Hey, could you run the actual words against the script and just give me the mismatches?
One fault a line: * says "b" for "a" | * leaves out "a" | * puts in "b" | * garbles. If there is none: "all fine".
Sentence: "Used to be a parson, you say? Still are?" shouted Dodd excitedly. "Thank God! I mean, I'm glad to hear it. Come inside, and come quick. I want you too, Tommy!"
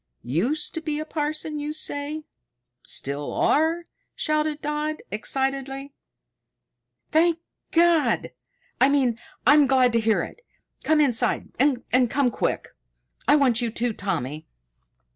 all fine